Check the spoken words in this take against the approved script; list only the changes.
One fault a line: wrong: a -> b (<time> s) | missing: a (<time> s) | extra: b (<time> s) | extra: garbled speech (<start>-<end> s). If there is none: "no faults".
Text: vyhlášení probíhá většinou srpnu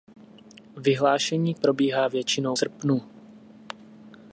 no faults